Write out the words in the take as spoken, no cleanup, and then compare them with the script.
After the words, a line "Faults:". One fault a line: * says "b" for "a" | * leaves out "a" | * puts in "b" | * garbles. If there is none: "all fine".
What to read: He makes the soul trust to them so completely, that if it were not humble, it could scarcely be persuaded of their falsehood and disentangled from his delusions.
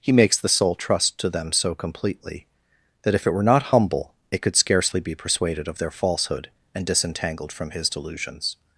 He makes the soul trust to them so completely, that if it were not humble, it could scarcely be persuaded of their falsehood and disentangled from his delusions.
Faults:
all fine